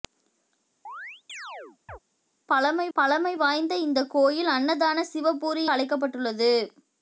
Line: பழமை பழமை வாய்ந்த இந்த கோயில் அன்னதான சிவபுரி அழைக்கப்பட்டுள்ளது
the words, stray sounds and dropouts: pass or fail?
fail